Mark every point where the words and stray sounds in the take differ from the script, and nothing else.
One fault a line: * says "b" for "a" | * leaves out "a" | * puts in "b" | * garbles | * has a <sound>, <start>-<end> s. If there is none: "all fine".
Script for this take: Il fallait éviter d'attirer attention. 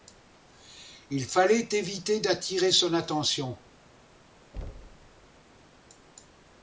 * puts in "son"
* has a thud, 4.5-5.3 s